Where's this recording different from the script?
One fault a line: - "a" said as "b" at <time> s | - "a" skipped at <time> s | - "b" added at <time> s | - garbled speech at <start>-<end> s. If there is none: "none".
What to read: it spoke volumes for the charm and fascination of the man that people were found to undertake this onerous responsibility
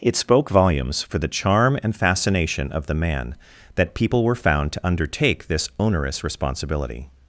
none